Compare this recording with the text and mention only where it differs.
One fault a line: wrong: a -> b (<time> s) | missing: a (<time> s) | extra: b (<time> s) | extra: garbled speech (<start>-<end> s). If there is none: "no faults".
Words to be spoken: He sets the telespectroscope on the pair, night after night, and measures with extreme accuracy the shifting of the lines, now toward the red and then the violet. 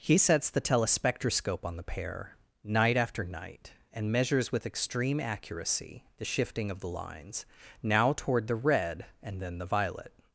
no faults